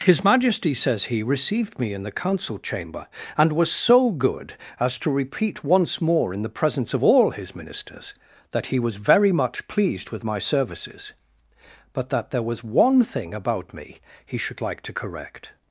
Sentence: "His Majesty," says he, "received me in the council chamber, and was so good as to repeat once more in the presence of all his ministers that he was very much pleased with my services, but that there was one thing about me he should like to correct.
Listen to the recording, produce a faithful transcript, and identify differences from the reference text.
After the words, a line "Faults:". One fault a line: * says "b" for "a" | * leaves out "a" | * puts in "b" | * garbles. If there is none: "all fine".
"His Majesty," says he, "received me in the council chamber, and was so good as to repeat once more in the presence of all his ministers that he was very much pleased with my services, but that there was one thing about me he should like to correct.
Faults:
all fine